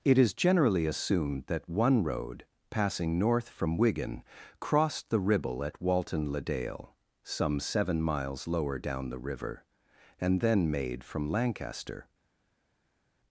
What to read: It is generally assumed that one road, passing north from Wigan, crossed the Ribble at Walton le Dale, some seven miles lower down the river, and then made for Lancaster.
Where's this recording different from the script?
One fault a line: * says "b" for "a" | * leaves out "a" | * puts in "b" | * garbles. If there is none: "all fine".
* says "from" for "for"